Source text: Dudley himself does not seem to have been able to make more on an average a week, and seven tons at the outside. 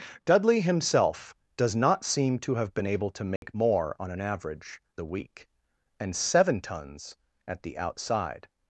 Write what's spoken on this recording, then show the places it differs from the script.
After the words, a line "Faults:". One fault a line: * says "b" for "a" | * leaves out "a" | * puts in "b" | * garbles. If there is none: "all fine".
Dudley himself does not seem to have been able to make more on an average a week, and seven tons at the outside.
Faults:
all fine